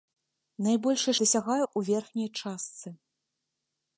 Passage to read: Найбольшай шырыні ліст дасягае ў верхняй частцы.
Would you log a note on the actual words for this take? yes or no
yes